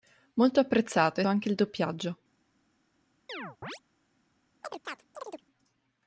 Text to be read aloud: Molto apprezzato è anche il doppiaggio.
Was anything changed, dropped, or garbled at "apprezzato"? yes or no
no